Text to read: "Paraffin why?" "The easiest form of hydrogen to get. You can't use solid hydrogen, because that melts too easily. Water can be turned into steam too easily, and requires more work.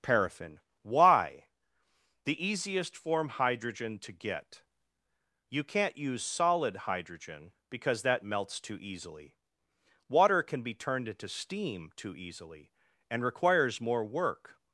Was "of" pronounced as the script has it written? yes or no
no